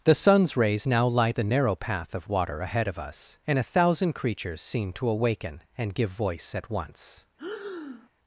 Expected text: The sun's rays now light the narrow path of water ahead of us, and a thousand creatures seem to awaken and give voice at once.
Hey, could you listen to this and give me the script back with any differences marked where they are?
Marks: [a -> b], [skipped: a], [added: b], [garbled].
The sun's rays now light the narrow path of water ahead of us, and a thousand creatures seem to awaken and give voice at once.